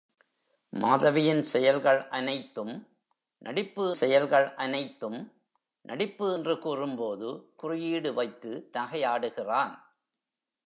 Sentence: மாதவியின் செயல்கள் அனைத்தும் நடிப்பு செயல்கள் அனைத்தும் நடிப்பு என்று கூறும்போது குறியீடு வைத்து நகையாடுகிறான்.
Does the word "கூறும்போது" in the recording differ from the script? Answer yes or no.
no